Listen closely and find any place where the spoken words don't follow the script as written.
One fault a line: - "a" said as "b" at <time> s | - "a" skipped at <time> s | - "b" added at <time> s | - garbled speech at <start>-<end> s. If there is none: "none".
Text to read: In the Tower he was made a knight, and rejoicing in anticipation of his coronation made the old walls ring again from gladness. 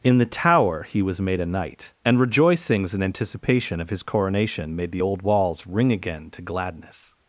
- "rejoicing" said as "rejoicings" at 2.2 s
- "from" said as "to" at 6.3 s